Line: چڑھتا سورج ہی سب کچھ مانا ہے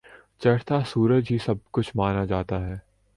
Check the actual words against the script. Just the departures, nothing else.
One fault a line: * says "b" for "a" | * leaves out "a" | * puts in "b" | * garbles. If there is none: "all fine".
* puts in "جاتا"